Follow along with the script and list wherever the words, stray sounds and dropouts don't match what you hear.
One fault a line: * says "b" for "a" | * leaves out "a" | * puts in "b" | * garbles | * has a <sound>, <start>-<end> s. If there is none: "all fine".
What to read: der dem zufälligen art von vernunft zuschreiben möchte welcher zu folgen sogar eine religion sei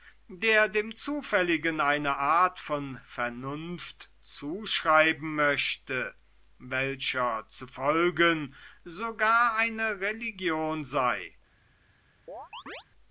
* puts in "eine"
* has a chirp, 12.3-12.8 s